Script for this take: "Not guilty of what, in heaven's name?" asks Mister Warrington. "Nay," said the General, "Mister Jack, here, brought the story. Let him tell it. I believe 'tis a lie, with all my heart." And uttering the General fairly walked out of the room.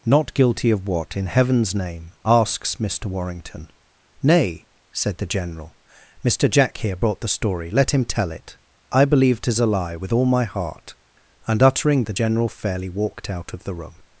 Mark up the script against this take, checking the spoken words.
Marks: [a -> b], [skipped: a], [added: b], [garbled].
"Not guilty of what, in heaven's name?" asks Mister Warrington. "Nay," said the General, "Mister Jack, here, brought the story. Let him tell it. I believe 'tis a lie, with all my heart." And uttering the General fairly walked out of the room.